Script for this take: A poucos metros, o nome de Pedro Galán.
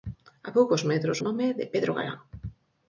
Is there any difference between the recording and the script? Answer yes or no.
no